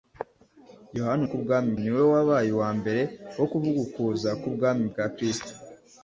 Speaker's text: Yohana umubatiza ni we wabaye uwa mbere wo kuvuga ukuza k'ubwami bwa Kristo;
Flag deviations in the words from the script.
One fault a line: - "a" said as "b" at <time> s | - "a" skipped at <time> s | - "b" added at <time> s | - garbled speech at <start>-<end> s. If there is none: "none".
- "umubatiza" said as "k'ubwami" at 1.3 s